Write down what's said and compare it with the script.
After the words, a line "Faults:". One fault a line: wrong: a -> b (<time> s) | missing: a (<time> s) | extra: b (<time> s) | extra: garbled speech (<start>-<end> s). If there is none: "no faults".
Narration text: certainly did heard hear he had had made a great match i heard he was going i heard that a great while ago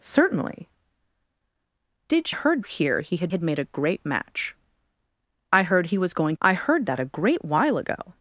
certainly did heard hear he had had made a great match i heard he was going i heard that a great while ago
Faults:
no faults